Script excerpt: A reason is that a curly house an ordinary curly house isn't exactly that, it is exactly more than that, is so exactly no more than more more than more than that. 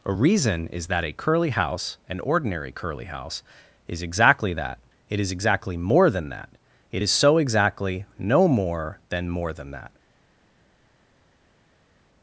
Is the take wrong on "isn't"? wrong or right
wrong